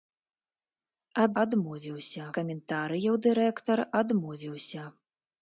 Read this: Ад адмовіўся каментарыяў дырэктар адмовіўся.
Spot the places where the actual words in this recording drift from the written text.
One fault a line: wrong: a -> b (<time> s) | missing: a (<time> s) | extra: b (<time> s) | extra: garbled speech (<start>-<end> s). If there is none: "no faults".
no faults